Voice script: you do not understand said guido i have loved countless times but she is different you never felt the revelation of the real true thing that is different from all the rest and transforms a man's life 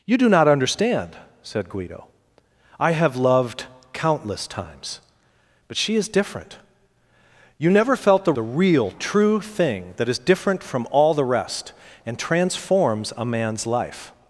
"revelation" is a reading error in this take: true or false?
true